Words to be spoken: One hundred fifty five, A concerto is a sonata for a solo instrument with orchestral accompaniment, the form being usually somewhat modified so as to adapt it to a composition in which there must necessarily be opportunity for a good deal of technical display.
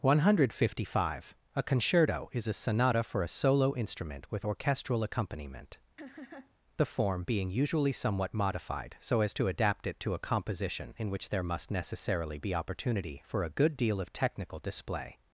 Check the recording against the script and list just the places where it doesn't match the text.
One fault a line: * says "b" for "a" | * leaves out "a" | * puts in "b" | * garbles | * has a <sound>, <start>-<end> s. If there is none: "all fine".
* has a laugh, 6.0-6.5 s